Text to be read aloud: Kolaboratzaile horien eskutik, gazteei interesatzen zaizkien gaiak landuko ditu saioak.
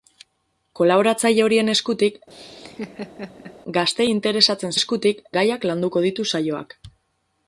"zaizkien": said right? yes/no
no